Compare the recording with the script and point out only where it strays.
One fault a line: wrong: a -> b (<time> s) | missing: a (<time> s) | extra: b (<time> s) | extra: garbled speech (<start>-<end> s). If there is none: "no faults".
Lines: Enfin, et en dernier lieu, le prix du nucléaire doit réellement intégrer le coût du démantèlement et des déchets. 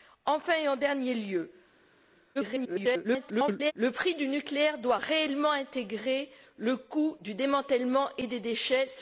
extra: garbled speech (2.4-3.7 s)